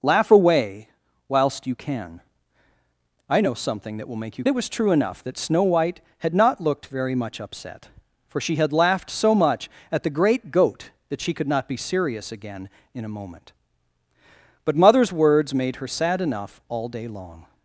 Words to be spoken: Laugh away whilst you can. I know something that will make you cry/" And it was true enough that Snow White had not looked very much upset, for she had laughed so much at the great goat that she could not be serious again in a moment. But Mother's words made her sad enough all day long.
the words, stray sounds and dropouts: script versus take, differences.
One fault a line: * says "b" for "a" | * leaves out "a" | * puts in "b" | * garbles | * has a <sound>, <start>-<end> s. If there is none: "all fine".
* leaves out "cry And"